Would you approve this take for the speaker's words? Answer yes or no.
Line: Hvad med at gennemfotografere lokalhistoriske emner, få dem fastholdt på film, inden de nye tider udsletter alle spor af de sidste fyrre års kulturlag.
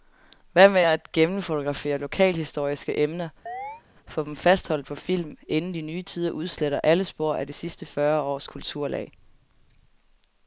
yes